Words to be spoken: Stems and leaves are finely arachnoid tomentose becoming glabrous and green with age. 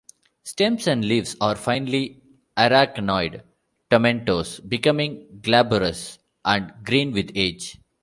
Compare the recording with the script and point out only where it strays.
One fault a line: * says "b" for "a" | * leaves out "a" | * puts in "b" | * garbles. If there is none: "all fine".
all fine